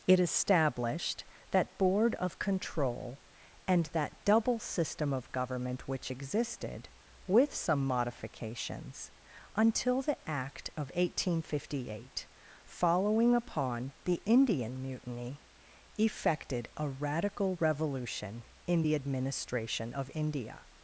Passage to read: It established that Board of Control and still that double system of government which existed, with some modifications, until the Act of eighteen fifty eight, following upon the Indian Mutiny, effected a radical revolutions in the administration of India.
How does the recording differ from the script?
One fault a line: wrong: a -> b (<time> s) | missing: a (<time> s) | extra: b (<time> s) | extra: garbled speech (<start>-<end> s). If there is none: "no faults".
missing: still (3.9 s)
wrong: revolutions -> revolution (17.6 s)